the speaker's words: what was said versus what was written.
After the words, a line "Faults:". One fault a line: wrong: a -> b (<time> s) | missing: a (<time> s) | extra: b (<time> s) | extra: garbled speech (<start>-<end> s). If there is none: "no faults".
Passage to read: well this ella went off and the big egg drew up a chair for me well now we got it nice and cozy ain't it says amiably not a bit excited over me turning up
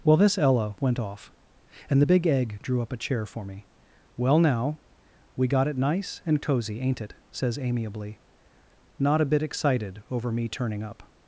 well this ella went off and the big egg drew up a chair for me well now we got it nice and cozy ain't it says amiably not a bit excited over me turning up
Faults:
no faults